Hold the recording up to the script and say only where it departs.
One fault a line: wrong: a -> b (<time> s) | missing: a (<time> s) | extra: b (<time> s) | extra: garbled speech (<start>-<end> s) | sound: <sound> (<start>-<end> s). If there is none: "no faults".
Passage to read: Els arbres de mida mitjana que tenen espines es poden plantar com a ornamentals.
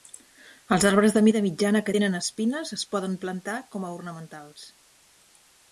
no faults